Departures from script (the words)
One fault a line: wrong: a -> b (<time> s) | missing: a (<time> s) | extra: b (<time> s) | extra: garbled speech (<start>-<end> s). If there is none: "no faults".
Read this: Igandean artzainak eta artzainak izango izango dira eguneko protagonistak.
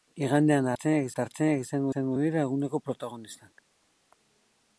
no faults